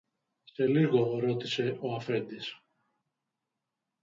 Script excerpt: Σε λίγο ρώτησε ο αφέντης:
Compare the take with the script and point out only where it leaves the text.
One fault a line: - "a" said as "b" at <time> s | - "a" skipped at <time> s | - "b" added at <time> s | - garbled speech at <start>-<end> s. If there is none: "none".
none